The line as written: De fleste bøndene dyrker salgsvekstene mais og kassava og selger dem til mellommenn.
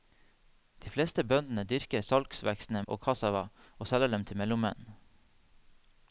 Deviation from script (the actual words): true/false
true